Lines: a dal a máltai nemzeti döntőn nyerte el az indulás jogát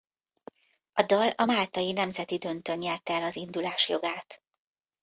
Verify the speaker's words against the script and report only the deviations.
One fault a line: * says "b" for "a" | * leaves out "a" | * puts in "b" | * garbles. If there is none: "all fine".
all fine